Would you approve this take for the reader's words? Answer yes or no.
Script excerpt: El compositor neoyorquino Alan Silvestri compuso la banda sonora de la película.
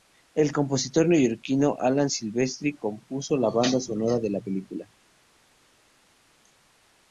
yes